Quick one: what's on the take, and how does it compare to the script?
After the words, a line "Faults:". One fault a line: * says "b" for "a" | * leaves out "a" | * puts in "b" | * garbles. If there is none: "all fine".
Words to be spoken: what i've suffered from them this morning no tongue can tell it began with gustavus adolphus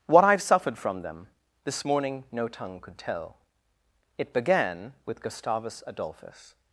what i've suffered from them this morning no tongue could tell it began with gustavus adolphus
Faults:
* says "could" for "can"